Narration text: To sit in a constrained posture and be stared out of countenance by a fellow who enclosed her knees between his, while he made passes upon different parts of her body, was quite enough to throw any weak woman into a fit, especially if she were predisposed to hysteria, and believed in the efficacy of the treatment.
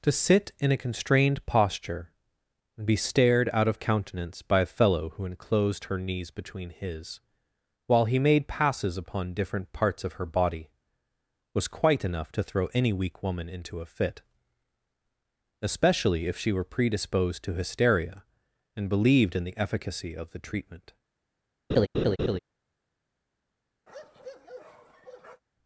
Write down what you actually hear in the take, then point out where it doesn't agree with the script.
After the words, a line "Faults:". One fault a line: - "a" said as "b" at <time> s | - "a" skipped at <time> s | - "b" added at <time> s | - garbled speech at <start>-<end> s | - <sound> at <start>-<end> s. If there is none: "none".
To sit in a constrained posture and be stared out of countenance by a fellow who enclosed her knees between his, while he made passes upon different parts of her body, was quite enough to throw any weak woman into a fit, especially if she were predisposed to hysteria, and believed in the efficacy of the treatment.
Faults:
- laugh at 21.7-22.4 s
- bark at 23.9-25.4 s